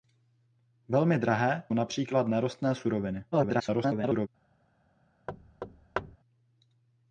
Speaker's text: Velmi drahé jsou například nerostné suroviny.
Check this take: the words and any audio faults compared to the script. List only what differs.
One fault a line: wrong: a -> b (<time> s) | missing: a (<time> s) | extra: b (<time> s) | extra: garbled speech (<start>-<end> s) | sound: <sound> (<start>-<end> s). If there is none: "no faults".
missing: jsou (1.6 s)
extra: garbled speech (3.3-4.3 s)
sound: thud (5.3-6.2 s)